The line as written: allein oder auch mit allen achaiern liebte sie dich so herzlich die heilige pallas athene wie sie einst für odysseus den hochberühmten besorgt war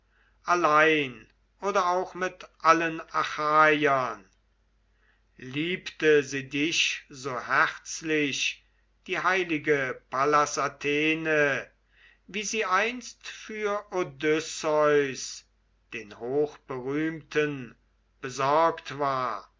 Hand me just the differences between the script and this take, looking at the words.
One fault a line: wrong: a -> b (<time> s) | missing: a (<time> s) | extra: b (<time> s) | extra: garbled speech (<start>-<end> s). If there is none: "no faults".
no faults